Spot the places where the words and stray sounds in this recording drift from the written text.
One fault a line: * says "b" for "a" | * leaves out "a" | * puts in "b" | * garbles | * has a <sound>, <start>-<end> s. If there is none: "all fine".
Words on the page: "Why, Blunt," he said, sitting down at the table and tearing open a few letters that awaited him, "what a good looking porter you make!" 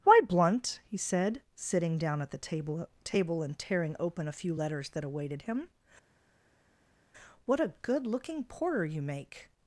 * puts in "table"